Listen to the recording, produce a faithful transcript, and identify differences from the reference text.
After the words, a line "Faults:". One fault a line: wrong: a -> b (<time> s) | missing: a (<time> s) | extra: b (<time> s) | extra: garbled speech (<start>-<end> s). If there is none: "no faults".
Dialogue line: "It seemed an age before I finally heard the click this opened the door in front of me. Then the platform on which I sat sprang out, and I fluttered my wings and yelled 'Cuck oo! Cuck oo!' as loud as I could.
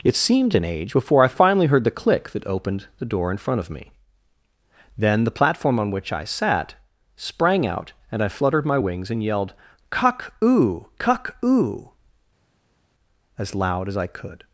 "It seemed an age before I finally heard the click that opened the door in front of me. Then the platform on which I sat sprang out, and I fluttered my wings and yelled 'Cuck oo! Cuck oo!' as loud as I could.
Faults:
wrong: this -> that (2.3 s)